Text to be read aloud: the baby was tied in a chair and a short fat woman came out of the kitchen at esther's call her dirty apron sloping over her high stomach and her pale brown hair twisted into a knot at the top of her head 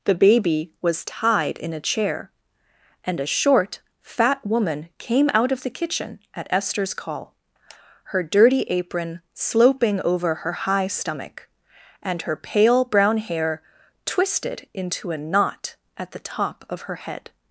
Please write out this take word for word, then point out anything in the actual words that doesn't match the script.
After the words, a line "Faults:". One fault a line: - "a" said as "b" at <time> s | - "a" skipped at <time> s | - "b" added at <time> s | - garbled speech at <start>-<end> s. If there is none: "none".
the baby was tied in a chair and a short fat woman came out of the kitchen at esther's call her dirty apron sloping over her high stomach and her pale brown hair twisted into a knot at the top of her head
Faults:
none